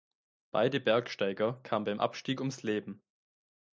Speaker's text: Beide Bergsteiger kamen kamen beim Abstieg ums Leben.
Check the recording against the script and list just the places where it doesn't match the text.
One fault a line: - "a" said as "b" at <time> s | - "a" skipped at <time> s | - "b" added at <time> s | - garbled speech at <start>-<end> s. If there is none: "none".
- "kamen" skipped at 1.9 s